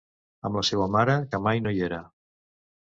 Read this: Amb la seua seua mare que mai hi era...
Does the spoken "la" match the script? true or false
true